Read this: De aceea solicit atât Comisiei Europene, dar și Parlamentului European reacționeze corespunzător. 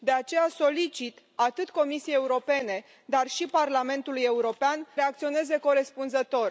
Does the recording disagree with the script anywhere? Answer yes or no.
no